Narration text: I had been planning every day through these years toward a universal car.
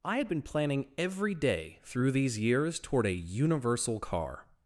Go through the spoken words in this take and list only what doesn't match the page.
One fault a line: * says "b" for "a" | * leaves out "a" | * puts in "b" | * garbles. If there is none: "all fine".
all fine